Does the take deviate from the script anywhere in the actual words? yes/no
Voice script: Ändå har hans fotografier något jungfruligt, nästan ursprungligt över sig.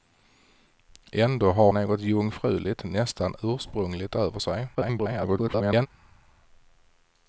yes